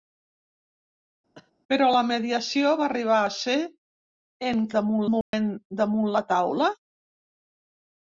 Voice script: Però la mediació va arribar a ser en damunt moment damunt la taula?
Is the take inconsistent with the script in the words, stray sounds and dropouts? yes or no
yes